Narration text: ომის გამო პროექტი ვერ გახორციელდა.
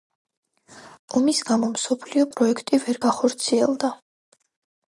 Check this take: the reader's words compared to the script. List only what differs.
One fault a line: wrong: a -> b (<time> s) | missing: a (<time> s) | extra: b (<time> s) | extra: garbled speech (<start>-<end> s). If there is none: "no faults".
extra: მსოფლიო (1.7 s)